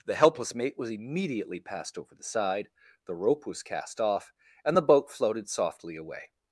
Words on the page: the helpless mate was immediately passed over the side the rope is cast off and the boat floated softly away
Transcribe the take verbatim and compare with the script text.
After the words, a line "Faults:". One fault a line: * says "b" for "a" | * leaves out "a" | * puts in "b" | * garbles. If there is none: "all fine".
the helpless mate was immediately passed over the side the rope was cast off and the boat floated softly away
Faults:
* says "was" for "is"